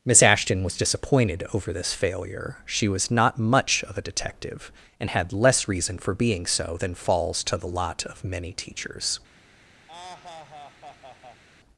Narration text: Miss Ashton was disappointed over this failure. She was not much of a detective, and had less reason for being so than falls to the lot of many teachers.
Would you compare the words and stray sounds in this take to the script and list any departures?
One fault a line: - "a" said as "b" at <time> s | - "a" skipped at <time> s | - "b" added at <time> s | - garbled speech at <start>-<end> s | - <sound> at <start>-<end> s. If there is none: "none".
- laugh at 9.9-11.4 s